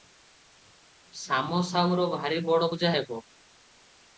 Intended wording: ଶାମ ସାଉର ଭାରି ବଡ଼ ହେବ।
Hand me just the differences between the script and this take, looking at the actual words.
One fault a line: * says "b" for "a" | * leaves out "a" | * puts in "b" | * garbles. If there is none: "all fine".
* puts in "ପୂଜା"